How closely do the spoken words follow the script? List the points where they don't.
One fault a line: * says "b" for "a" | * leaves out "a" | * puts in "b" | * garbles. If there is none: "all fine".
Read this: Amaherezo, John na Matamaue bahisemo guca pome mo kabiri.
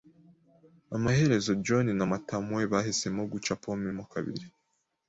all fine